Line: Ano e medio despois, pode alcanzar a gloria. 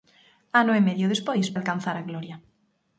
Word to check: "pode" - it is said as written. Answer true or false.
false